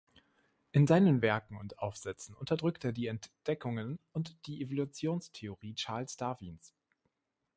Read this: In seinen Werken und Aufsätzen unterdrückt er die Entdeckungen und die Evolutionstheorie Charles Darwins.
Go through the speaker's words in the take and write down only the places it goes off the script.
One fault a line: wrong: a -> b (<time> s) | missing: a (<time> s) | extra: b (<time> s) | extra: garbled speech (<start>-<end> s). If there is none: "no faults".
no faults